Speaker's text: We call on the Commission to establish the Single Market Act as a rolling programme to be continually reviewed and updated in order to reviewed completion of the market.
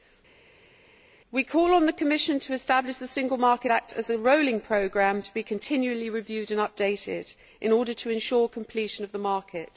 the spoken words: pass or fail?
fail